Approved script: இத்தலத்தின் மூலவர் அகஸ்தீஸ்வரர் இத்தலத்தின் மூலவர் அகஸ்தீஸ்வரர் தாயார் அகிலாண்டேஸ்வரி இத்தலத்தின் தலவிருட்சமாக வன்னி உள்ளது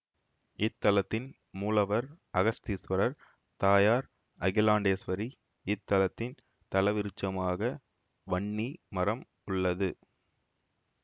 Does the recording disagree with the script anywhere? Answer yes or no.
yes